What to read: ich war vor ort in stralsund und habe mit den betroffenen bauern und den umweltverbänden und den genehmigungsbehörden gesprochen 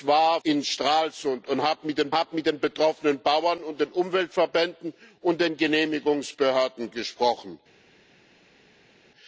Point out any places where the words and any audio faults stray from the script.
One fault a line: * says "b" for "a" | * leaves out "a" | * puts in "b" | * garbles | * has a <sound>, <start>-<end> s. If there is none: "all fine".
* leaves out "vor ort"
* puts in "habe mit den"